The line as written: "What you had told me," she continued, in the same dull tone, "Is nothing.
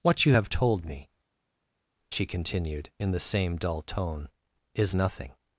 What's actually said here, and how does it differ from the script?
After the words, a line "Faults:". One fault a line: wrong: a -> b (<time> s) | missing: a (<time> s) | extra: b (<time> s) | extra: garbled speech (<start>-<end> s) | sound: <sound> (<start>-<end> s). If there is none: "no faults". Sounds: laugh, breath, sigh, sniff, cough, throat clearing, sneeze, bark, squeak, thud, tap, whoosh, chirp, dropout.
"What you have told me," she continued, in the same dull tone, "Is nothing.
Faults:
wrong: had -> have (0.3 s)